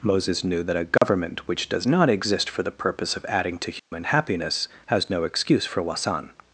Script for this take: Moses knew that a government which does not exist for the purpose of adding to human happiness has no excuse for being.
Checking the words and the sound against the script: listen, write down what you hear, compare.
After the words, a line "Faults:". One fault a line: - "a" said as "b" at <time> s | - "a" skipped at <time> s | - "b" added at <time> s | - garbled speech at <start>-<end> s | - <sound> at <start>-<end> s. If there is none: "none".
Moses knew that a government which does not exist for the purpose of adding to human happiness has no excuse for wasan.
Faults:
- dropout at 1.0-1.0 s
- dropout at 3.8-3.9 s
- "being" said as "wasan" at 5.8 s